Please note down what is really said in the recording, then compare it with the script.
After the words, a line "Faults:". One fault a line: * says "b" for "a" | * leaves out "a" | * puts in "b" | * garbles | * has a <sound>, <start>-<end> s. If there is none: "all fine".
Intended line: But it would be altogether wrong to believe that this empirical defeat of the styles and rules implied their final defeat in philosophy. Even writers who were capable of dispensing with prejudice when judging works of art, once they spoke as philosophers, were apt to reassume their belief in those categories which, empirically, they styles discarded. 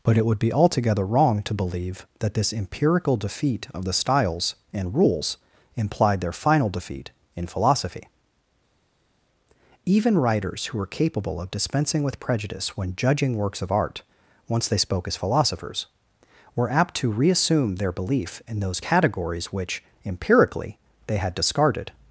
But it would be altogether wrong to believe that this empirical defeat of the styles and rules implied their final defeat in philosophy. Even writers who were capable of dispensing with prejudice when judging works of art, once they spoke as philosophers, were apt to reassume their belief in those categories which, empirically, they had discarded.
Faults:
* says "had" for "styles"